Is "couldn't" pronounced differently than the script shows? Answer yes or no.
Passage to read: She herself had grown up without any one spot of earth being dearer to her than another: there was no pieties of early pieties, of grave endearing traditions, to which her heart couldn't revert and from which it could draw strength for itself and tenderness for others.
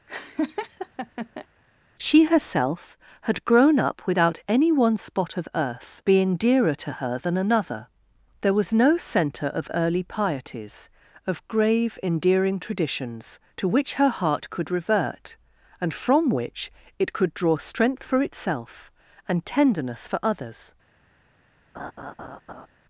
yes